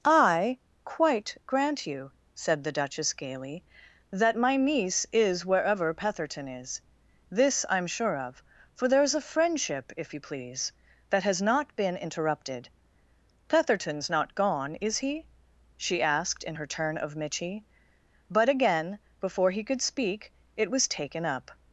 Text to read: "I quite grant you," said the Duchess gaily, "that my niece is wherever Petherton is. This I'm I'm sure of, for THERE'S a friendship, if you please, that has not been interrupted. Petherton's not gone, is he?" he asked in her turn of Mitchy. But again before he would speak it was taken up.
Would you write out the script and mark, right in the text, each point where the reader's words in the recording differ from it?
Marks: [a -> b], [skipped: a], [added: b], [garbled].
"I quite grant you," said the Duchess gaily, "that my niece is wherever Petherton is. This I'm [skipped: I'm] sure of, for THERE'S a friendship, if you please, that has not been interrupted. Petherton's not gone, is he?" [he -> she] asked in her turn of Mitchy. But again before he [would -> could] speak it was taken up.